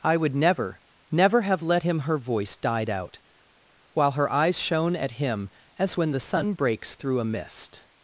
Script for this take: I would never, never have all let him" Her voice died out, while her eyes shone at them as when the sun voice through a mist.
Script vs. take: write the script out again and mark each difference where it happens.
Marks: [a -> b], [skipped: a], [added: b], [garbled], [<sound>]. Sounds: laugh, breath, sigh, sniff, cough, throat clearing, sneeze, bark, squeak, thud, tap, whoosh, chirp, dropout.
I would never, never have [skipped: all] let him" Her voice died out, while her eyes shone at [them -> him] as when the sun [voice -> breaks] through a mist.